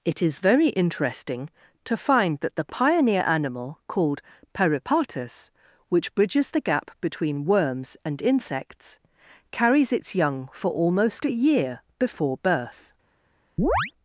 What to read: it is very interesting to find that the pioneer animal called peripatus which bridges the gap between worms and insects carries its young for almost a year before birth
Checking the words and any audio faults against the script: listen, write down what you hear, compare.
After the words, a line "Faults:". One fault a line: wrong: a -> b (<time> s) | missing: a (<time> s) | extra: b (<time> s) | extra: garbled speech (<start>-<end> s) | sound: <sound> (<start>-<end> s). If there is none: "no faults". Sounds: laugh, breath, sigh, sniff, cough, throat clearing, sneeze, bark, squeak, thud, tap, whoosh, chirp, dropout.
it is very interesting to find that the pioneer animal called peripatus which bridges the gap between worms and insects carries its young for almost a year before birth
Faults:
sound: chirp (13.6-13.9 s)